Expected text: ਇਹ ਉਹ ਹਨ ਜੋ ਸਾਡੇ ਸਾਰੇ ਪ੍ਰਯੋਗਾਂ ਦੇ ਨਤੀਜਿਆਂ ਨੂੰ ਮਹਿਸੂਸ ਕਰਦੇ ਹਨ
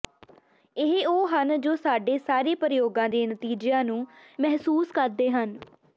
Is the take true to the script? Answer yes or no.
yes